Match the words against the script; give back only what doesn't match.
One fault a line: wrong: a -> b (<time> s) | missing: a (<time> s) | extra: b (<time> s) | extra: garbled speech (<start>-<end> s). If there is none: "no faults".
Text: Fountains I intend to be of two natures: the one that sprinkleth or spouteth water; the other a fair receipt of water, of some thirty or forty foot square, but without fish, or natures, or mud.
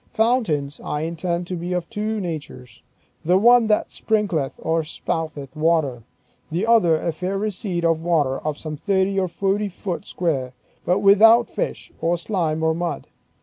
wrong: natures -> slime (12.2 s)